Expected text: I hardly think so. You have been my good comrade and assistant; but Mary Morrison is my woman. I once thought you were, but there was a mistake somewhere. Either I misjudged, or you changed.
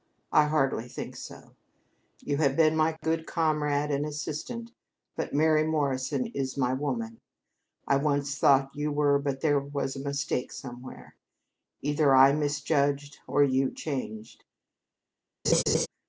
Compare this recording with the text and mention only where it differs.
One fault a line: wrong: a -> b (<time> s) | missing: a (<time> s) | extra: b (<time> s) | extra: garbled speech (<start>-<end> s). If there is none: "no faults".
no faults